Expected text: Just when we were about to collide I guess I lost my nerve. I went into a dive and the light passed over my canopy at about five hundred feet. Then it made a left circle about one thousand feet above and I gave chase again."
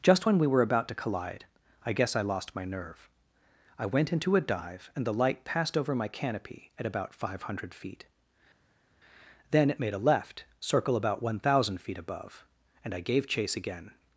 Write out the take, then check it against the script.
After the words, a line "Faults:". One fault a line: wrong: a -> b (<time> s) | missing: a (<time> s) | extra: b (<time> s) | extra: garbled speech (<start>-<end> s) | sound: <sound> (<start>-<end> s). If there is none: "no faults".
Just when we were about to collide I guess I lost my nerve. I went into a dive and the light passed over my canopy at about five hundred feet. Then it made a left circle about one thousand feet above and I gave chase again."
Faults:
no faults